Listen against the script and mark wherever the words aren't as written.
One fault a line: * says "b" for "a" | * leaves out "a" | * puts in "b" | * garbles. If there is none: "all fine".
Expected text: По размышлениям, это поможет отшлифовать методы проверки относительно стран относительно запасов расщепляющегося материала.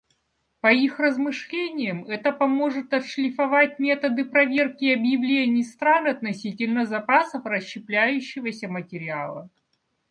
* puts in "их"
* says "объявлений" for "относительно"